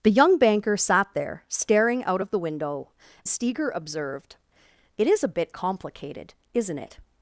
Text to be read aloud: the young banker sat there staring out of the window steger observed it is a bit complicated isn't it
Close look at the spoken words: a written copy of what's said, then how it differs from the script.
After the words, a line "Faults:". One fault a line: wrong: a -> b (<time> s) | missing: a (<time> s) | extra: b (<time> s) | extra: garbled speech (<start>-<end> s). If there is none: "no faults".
the young banker sat there staring out of the window steger observed it is a bit complicated isn't it
Faults:
no faults